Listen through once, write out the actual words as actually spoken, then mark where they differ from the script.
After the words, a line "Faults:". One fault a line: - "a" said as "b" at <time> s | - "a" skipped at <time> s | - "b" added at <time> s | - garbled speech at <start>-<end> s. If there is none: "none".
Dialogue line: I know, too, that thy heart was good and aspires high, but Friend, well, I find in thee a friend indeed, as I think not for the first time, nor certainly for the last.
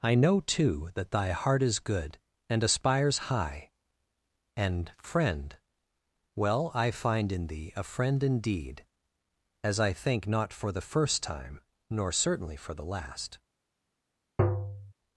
I know, too, that thy heart is good and aspires high, and Friend, well, I find in thee a friend indeed, as I think not for the first time, nor certainly for the last.
Faults:
- "was" said as "is" at 1.6 s
- "but" said as "and" at 4.6 s